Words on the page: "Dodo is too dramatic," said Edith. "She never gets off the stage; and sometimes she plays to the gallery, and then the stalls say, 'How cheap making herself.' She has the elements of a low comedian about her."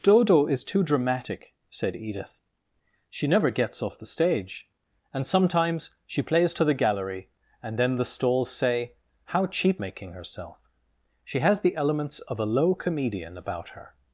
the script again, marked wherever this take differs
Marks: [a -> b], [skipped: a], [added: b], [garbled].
"Dodo is too dramatic," said Edith. "She never gets off the stage; and sometimes she plays to the gallery, and then the stalls say, 'How cheap making herself.' She has the elements of a low comedian about her."